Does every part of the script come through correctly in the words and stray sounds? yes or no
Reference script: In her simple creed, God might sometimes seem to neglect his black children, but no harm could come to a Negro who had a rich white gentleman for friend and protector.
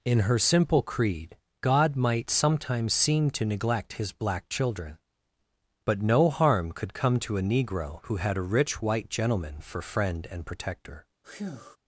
no